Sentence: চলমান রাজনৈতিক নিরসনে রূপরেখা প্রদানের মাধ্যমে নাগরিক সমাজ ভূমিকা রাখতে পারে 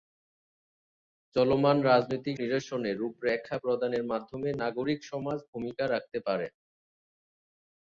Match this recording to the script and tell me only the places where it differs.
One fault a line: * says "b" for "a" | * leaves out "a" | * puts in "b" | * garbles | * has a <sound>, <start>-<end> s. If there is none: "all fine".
all fine